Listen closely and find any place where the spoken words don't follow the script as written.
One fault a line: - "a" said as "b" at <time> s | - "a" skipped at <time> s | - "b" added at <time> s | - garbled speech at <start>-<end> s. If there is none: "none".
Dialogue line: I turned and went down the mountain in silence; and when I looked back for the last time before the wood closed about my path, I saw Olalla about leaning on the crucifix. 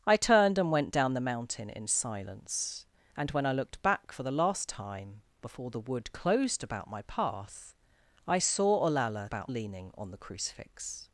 none